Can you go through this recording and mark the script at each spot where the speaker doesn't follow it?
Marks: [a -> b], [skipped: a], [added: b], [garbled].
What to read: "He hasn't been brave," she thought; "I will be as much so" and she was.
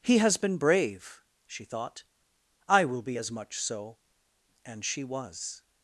"He [hasn't -> has] been brave," she thought; "I will be as much so" and she was.